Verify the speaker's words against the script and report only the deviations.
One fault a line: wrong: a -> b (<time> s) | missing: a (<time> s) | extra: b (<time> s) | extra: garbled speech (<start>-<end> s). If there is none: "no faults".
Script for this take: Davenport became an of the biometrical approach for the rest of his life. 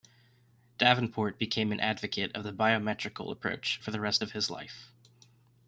extra: advocate (1.8 s)